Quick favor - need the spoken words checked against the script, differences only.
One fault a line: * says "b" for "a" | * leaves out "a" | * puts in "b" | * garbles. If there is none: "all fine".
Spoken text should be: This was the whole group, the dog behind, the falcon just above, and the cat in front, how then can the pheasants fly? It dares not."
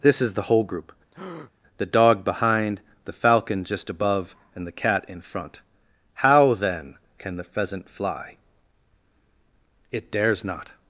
* says "is" for "was"
* says "pheasant" for "pheasants"